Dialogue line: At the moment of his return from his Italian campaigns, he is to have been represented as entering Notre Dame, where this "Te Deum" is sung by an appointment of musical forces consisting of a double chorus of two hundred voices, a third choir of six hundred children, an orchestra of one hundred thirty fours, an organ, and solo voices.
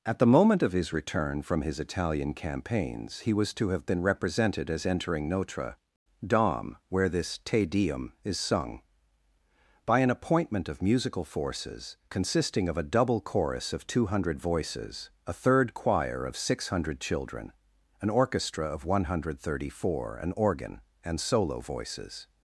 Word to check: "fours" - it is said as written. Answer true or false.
false